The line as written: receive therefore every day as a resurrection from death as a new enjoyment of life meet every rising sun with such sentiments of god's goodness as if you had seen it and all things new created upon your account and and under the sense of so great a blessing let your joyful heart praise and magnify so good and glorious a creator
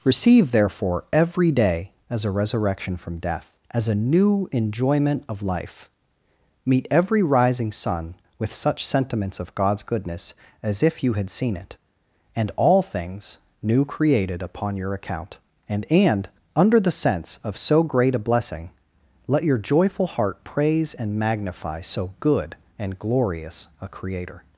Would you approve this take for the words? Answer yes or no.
yes